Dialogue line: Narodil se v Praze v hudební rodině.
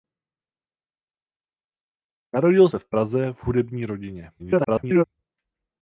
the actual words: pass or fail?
fail